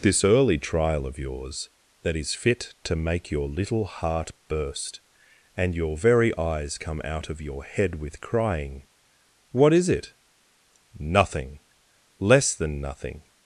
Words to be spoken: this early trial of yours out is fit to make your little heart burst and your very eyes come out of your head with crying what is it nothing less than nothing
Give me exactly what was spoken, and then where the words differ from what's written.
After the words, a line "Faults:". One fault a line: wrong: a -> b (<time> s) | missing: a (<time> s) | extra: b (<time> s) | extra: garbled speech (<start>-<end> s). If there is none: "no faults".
this early trial of yours that is fit to make your little heart burst and your very eyes come out of your head with crying what is it nothing less than nothing
Faults:
wrong: out -> that (2.0 s)